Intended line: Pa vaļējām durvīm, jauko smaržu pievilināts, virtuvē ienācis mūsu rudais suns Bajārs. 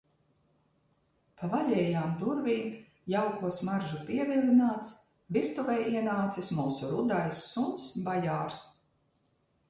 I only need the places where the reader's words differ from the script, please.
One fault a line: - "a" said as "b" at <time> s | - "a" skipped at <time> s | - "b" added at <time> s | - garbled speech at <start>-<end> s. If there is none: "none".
none